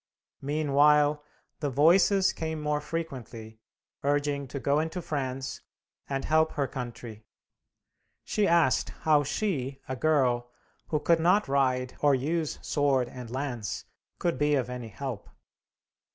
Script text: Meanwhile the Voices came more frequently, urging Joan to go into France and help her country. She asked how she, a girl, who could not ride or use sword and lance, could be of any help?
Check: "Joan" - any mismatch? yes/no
yes